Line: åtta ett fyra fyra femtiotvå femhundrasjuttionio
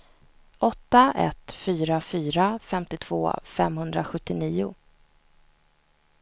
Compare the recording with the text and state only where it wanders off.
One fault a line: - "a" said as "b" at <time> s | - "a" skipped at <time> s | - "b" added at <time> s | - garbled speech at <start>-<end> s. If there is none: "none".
none